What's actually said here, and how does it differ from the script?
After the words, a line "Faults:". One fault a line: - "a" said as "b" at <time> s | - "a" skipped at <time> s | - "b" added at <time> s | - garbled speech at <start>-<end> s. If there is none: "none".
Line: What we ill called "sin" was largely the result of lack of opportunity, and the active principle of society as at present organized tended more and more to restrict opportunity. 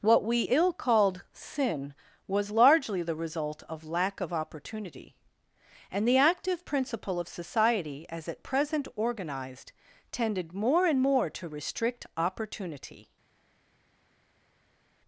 What we ill called "sin" was largely the result of lack of opportunity, and the active principle of society as at present organized tended more and more to restrict opportunity.
Faults:
none